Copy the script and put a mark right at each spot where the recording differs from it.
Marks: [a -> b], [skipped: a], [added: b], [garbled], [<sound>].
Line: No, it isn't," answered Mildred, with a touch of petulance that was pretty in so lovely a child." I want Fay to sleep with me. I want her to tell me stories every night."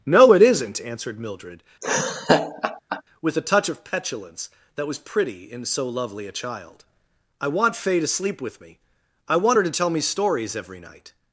No, it isn't," answered Mildred, [laugh] with a touch of petulance that was pretty in so lovely a child." I want Fay to sleep with me. I want her to tell me stories every night."